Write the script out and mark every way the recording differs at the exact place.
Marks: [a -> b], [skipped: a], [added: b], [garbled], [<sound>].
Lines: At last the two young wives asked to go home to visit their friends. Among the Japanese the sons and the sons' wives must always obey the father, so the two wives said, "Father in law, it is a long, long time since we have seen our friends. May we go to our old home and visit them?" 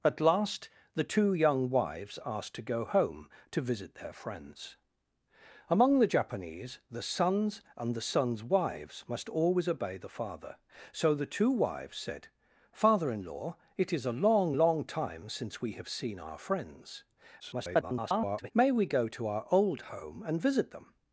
At last the two young wives asked to go home to visit their friends. Among the Japanese the sons and the sons' wives must always obey the father, so the two wives said, "Father in law, it is a long, long time since we have seen our friends. [garbled] May we go to our old home and visit them?"